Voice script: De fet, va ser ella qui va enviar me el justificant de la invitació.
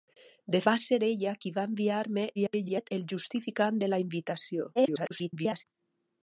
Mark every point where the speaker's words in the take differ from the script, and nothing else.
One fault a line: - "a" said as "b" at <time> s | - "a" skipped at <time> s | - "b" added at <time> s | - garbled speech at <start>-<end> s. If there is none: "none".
- "fet" skipped at 0.6 s
- garbled speech at 2.4-2.9 s
- garbled speech at 4.8-5.6 s